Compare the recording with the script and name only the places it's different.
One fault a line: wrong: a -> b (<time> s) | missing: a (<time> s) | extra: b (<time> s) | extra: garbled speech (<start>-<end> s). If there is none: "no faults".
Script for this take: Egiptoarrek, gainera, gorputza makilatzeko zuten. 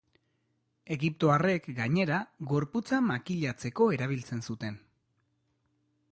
extra: erabiltzen (4.0 s)